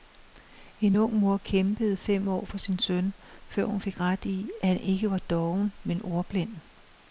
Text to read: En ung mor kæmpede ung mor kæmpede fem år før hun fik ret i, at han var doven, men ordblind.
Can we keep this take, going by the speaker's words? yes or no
no